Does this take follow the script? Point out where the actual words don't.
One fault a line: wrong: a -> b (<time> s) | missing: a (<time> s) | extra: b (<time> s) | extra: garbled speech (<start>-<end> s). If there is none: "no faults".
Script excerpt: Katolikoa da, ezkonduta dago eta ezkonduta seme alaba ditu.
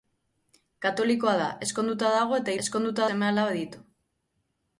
no faults